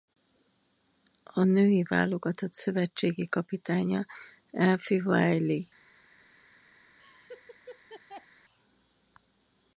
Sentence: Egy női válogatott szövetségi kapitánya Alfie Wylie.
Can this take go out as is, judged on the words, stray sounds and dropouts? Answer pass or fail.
fail